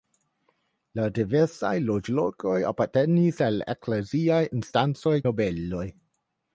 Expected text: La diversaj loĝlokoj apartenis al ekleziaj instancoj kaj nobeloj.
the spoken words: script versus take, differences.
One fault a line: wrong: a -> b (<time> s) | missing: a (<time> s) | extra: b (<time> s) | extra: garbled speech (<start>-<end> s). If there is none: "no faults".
missing: kaj (5.2 s)